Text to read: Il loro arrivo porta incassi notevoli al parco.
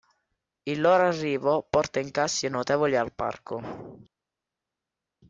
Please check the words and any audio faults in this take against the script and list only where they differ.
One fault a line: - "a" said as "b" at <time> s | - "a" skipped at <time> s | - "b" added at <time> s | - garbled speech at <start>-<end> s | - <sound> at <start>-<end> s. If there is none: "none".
none